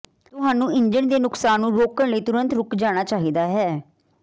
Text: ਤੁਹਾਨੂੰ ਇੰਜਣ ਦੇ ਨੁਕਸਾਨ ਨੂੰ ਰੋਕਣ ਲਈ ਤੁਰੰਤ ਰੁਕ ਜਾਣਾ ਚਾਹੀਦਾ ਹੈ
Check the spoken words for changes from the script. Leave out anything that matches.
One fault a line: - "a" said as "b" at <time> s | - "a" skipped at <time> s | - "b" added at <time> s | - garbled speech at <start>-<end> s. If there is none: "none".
none